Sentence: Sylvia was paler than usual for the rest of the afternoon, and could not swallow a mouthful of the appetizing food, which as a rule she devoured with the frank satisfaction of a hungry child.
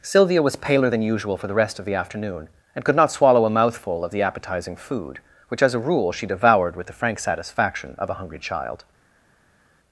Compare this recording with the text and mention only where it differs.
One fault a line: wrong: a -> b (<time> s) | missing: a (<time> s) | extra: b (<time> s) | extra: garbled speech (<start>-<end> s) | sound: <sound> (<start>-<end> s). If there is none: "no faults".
no faults